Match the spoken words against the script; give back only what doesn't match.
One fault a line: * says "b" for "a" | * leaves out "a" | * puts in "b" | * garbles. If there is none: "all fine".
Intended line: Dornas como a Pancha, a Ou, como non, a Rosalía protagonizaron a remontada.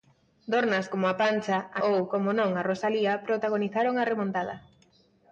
all fine